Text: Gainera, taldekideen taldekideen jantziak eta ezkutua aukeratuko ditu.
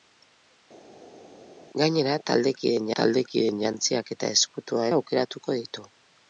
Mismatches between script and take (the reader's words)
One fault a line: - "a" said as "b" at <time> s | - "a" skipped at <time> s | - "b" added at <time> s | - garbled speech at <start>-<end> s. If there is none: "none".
none